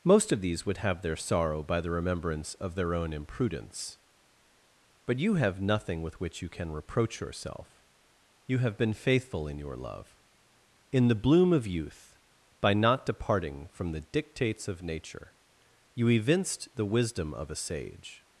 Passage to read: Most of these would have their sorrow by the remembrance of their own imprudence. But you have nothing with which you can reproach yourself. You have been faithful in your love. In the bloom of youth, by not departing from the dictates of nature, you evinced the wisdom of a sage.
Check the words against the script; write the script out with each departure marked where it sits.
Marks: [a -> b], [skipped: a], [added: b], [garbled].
Most of these would have their sorrow by the remembrance of their own imprudence. But you have nothing with which you can reproach yourself. You have been faithful in your love. In the bloom of youth, by not departing from the dictates of nature, you evinced the wisdom of a sage.